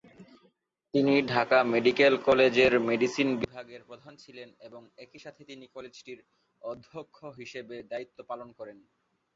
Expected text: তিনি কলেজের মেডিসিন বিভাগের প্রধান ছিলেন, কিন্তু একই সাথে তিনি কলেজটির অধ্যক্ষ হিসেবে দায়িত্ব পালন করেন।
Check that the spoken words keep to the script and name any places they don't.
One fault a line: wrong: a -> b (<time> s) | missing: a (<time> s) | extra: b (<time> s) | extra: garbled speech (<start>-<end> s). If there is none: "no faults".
extra: ঢাকা মেডিকেল (1.3 s)
wrong: কিন্তু -> এবং (4.7 s)